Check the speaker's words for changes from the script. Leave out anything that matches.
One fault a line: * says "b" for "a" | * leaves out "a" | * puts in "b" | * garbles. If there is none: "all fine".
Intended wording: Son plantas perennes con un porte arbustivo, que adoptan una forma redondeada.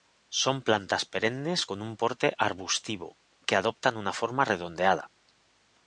all fine